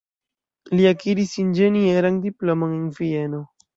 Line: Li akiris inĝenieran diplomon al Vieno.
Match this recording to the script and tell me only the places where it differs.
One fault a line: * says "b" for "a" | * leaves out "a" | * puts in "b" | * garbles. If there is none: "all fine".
* says "en" for "al"